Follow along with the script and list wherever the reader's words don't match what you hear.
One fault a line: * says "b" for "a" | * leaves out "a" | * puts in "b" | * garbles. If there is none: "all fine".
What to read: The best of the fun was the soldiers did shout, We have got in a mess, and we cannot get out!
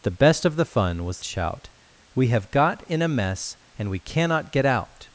* leaves out "the soldiers did"